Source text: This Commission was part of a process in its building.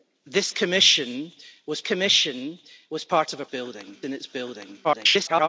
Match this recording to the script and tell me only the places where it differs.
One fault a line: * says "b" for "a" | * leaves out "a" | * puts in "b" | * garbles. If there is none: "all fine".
* puts in "Commission was"
* says "building" for "process"
* garbles